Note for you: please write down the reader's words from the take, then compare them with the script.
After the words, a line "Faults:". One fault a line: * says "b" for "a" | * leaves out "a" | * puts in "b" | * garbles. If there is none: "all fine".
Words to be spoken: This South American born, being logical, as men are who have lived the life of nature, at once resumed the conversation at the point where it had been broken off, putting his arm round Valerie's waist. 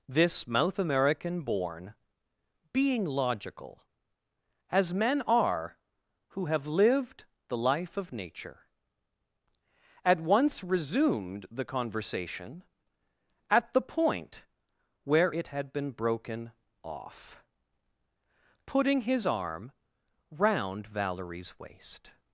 This Mouth American born, being logical, as men are who have lived the life of nature, at once resumed the conversation at the point where it had been broken off, putting his arm round Valerie's waist.
Faults:
* says "Mouth" for "South"